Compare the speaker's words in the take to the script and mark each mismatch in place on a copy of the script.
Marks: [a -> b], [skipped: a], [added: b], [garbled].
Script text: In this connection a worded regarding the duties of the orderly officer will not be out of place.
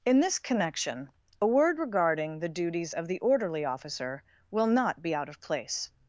In this connection a [worded -> word] regarding the duties of the orderly officer will not be out of place.